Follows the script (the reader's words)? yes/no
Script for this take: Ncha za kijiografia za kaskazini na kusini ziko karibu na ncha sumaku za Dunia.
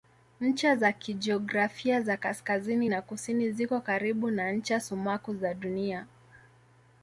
yes